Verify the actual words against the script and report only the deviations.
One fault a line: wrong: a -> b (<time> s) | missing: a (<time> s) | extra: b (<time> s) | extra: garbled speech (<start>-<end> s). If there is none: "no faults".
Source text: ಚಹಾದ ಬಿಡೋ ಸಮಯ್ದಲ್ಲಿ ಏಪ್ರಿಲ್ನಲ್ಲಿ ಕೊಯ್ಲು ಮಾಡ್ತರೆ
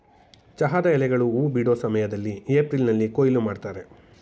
extra: ಎಲೆಗಳು ಹೂ (0.9 s)